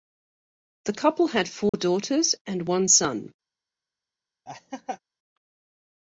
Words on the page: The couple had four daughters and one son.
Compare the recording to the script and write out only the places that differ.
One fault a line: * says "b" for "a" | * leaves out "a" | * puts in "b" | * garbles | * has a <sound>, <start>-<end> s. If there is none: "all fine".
* has a dropout, 1.7-1.7 s
* has a laugh, 4.5-5.0 s